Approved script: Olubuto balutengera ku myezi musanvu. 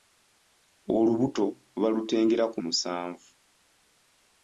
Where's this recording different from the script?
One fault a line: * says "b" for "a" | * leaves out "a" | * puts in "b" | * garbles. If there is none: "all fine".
* leaves out "myezi"